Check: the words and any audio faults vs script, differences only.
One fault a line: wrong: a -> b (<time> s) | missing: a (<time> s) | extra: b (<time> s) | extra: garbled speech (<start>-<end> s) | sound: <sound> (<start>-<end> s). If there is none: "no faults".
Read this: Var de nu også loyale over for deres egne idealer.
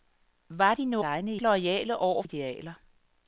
wrong: også -> egne (1.0 s)
missing: for deres egne (2.2 s)